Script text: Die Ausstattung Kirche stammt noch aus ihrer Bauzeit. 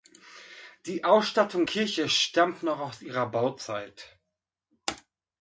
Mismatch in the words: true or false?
false